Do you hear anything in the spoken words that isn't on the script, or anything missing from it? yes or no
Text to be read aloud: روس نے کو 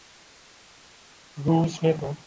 no